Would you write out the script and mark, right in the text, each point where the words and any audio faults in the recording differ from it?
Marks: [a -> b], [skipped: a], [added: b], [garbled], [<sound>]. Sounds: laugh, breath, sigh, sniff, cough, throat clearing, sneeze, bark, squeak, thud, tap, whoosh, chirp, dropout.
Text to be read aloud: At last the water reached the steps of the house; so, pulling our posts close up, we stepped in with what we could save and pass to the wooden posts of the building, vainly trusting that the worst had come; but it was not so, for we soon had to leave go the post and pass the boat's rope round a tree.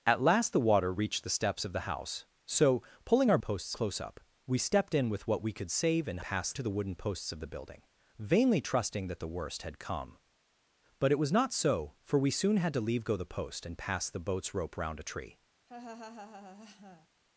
At last the water reached the steps of the house; so, pulling our posts close up, we stepped in with what we could save and pass to the wooden posts of the building, vainly trusting that the worst had come; but it was not so, for we soon had to leave go the post and pass the boat's rope round a tree. [laugh]